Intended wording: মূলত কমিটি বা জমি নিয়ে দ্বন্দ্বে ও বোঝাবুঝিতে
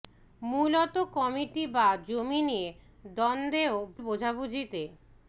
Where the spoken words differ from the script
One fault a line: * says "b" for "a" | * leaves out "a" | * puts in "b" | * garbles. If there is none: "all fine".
all fine